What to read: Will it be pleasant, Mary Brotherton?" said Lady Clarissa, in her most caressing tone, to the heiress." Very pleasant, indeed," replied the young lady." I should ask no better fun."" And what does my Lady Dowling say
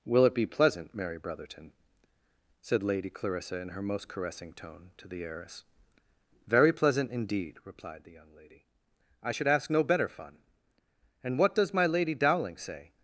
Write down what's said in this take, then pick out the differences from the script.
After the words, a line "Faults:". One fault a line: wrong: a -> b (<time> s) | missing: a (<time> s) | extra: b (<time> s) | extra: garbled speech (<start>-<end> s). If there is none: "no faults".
Will it be pleasant, Mary Brotherton?" said Lady Clarissa, in her most caressing tone, to the heiress." Very pleasant, indeed," replied the young lady." I should ask no better fun."" And what does my Lady Dowling say
Faults:
no faults